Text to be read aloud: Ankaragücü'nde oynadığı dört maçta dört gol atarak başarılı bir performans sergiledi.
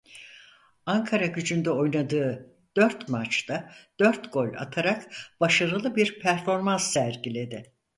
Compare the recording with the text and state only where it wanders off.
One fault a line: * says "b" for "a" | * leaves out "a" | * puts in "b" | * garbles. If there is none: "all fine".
all fine